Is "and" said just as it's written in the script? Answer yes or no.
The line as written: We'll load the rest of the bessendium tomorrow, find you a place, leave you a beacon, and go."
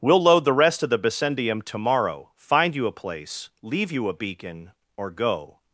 no